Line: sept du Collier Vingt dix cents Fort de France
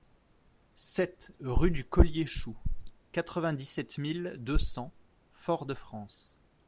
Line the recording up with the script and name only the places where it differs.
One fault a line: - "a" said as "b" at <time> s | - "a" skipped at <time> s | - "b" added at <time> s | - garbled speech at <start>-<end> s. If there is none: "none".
- "rue" added at 1.4 s
- "Chou quatre" added at 2.2 s
- "sept mille deux" added at 3.7 s